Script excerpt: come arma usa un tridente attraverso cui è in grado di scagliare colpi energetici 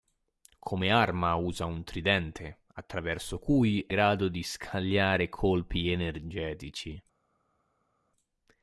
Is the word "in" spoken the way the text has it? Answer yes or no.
no